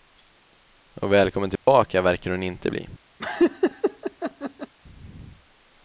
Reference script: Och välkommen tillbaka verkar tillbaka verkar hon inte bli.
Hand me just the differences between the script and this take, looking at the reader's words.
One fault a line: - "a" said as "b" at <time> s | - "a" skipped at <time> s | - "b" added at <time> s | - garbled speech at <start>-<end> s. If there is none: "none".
- "tillbaka verkar" skipped at 2.3 s